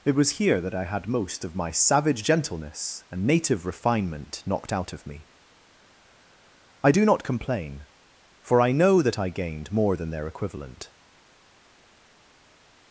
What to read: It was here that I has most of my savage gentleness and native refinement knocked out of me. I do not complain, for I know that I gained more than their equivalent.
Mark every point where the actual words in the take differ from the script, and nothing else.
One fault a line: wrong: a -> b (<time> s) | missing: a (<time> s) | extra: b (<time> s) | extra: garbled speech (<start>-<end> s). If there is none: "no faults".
wrong: has -> had (0.8 s)